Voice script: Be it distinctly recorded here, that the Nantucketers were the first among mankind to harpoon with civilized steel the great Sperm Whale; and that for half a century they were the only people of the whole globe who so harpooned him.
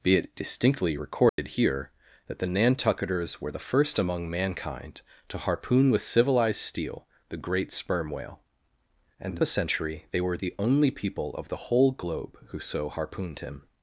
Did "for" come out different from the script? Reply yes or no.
yes